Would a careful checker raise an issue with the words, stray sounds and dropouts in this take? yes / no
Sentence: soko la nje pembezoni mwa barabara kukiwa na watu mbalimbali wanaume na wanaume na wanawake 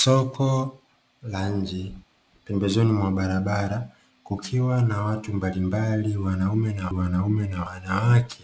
no